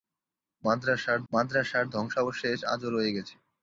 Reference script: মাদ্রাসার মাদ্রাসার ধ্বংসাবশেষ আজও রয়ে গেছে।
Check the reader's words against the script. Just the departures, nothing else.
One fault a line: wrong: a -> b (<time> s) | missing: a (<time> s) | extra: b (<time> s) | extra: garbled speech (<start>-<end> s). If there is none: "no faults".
no faults